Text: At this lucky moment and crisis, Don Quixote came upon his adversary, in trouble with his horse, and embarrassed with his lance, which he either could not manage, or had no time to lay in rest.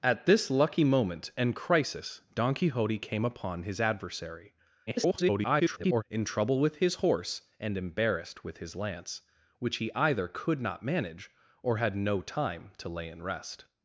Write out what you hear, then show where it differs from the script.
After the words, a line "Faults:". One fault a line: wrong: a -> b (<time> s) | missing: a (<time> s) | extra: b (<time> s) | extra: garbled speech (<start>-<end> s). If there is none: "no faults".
At this lucky moment and crisis, Don Quixote came upon his adversary, [garbled] in trouble with his horse, and embarrassed with his lance, which he either could not manage, or had no time to lay in rest.
Faults:
extra: garbled speech (4.9-6.0 s)